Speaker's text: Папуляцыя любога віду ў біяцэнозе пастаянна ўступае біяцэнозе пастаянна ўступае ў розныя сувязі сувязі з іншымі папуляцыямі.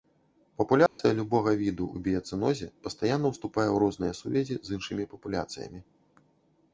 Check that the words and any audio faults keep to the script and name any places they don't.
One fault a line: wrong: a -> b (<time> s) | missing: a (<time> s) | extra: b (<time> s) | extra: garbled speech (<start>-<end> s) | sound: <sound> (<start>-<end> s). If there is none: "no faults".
sound: dropout (0.9-1.0 s)
missing: біяцэнозе пастаянна ўступае (3.7 s)
missing: сувязі (4.6 s)